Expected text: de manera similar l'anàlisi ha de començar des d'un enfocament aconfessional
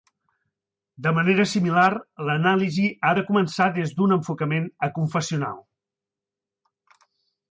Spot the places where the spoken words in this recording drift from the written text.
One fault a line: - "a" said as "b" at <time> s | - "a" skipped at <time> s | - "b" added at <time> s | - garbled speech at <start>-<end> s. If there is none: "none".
none